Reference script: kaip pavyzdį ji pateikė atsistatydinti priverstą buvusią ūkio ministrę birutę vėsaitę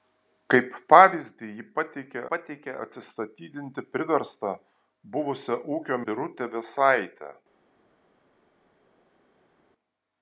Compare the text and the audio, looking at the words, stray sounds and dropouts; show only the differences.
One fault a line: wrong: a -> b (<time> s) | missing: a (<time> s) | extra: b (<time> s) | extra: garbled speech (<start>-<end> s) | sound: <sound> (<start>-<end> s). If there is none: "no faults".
extra: pateikė (2.3 s)
missing: ministrę (6.0 s)